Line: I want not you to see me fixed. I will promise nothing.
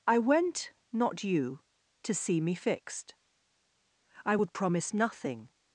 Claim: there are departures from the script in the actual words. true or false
true